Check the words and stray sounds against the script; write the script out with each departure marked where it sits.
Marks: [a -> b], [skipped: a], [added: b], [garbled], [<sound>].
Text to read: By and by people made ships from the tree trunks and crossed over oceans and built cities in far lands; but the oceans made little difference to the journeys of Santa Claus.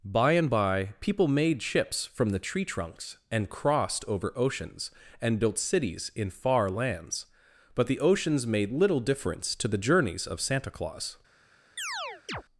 By and by people made ships from the tree trunks and crossed over oceans and built cities in far lands; but the oceans made little difference to the journeys of Santa Claus. [chirp]